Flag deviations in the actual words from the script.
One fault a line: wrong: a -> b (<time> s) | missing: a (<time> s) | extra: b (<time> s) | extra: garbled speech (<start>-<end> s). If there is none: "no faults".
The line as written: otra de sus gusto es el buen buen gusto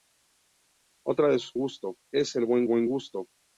no faults